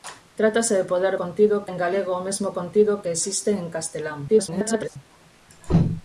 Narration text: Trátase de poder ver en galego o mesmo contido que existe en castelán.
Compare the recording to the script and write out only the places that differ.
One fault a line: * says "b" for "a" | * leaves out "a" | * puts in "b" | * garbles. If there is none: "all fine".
* says "contido" for "ver"
* garbles